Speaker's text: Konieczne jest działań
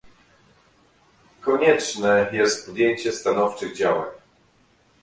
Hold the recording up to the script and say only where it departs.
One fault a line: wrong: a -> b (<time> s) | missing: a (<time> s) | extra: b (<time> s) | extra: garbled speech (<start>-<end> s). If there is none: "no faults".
extra: podjęcie stanowczych (2.6 s)